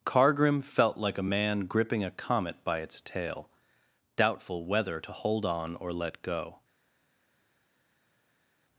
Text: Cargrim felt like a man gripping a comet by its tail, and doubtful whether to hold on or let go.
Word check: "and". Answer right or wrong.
wrong